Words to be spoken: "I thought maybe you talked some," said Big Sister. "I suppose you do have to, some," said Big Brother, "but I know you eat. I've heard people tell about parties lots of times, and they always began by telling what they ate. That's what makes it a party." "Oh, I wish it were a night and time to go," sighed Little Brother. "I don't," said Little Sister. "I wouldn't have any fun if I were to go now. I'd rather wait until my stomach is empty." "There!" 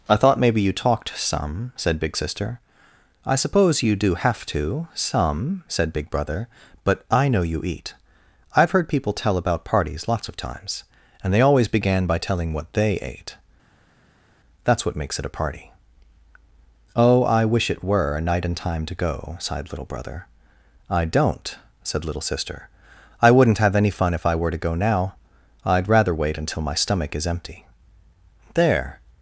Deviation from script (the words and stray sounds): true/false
false